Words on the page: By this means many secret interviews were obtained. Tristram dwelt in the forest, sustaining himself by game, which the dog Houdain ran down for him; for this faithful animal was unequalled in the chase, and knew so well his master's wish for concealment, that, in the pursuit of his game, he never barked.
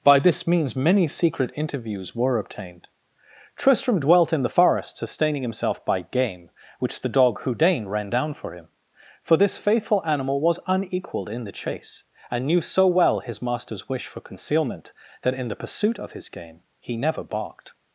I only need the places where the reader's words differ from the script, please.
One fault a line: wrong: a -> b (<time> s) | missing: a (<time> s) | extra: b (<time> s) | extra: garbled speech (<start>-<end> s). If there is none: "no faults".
no faults